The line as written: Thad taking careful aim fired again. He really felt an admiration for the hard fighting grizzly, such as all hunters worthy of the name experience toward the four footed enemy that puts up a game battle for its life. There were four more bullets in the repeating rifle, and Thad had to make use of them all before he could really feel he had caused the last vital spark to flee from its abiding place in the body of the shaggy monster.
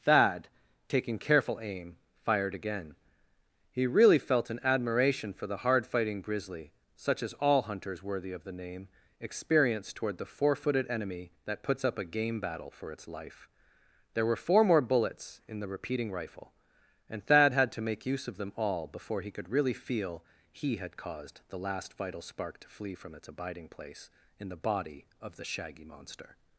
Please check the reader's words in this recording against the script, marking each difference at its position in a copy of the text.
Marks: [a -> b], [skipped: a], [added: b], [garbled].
Thad taking careful aim fired again. He really felt an admiration for the hard fighting grizzly, such as all hunters worthy of the name experience toward the four footed enemy that puts up a game battle for its life. There were four more bullets in the repeating rifle, and Thad had to make use of them all before he could really feel he had caused the last vital spark to flee from its abiding place in the body of the shaggy monster.